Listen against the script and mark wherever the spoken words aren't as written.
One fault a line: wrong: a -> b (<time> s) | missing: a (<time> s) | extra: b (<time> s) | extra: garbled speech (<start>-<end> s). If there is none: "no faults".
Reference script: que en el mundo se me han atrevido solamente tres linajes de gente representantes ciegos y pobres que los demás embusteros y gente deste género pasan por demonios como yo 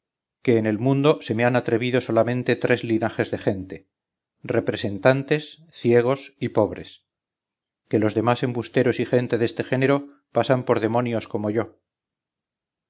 no faults